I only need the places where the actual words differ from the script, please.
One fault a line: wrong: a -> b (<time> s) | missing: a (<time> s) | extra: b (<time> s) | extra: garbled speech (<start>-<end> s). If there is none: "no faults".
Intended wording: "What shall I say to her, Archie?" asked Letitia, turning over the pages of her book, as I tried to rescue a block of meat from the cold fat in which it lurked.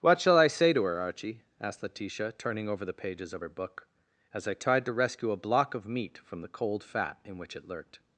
no faults